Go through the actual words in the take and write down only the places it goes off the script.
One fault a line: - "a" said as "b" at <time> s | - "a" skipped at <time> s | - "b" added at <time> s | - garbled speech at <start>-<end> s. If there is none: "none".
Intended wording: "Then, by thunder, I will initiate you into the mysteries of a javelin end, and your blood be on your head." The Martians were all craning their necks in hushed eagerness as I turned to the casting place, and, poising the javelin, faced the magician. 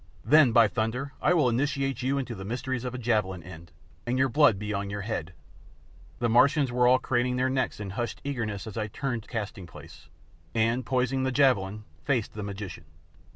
- "the" skipped at 9.3 s